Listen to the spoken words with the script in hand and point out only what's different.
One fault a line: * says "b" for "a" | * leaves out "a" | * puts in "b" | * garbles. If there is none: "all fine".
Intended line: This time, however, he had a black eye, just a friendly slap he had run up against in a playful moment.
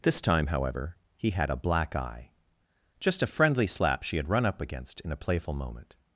* says "she" for "he"